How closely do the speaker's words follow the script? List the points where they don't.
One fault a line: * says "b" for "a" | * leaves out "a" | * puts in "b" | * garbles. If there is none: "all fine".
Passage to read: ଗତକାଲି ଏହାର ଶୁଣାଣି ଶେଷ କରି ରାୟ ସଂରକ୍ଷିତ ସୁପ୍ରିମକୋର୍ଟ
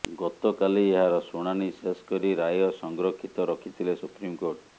* puts in "ରଖିଥିଲେ"